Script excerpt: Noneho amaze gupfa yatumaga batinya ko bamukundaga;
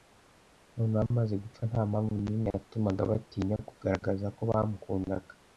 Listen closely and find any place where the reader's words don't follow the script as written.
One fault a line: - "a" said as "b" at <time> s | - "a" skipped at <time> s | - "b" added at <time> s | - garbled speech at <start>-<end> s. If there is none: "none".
- "nta mpamvu nimwe" added at 1.7 s
- "kugaragaza" added at 3.7 s